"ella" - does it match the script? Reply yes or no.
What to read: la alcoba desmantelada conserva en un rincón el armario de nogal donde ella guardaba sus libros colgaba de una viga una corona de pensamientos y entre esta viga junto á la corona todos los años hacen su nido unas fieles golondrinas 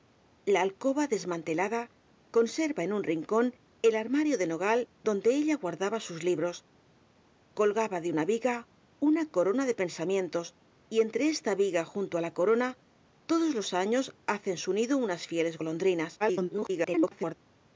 yes